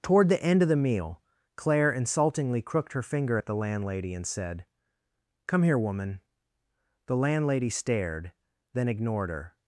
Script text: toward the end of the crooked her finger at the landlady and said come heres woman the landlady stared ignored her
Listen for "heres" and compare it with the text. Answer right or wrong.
wrong